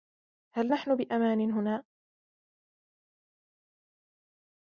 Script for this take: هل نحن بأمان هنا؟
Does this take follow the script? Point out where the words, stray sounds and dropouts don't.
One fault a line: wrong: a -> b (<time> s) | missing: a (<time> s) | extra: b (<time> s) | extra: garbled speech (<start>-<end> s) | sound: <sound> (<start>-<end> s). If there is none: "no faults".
no faults